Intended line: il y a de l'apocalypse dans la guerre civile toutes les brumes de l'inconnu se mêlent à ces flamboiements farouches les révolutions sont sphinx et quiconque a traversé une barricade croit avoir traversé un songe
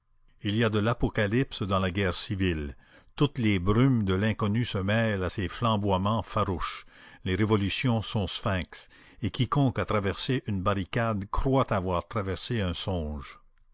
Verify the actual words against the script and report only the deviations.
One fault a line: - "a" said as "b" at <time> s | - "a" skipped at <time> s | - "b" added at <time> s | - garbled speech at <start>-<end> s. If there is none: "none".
none